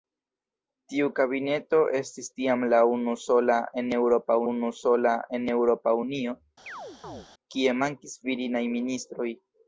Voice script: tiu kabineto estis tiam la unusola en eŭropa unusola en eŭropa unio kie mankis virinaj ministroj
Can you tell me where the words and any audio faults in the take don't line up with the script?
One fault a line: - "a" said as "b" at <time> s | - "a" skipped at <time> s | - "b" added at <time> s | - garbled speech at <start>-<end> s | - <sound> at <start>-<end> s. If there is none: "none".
- chirp at 6.7-7.3 s